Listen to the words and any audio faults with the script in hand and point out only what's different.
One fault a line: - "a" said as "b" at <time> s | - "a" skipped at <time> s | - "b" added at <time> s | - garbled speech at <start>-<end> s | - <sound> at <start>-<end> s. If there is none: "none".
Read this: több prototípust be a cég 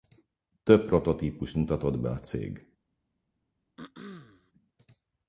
- "mutatott" added at 1.5 s
- throat clearing at 3.8-4.5 s